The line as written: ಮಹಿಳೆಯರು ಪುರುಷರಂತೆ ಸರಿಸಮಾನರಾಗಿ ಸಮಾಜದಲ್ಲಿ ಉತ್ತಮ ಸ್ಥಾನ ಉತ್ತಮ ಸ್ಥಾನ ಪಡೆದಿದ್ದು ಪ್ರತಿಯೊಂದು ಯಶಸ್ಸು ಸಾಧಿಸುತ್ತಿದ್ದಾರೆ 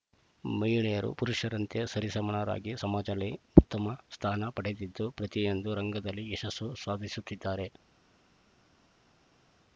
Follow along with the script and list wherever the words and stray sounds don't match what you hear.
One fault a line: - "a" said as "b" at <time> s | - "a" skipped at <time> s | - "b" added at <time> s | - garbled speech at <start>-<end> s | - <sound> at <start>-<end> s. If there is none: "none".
- "ಉತ್ತಮ ಸ್ಥಾನ" skipped at 4.5 s
- "ರಂಗದಲ್ಲಿ" added at 5.7 s